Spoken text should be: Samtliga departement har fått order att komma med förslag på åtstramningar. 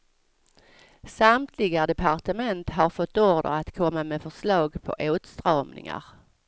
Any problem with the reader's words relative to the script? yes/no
no